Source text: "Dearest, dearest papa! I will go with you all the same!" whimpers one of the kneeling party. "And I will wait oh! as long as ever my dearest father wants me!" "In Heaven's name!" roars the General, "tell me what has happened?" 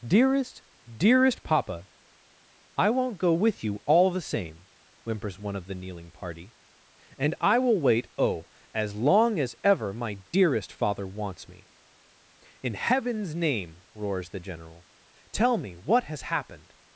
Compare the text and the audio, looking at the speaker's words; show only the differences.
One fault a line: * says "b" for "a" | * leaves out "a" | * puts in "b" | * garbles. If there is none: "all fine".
* says "won't" for "will"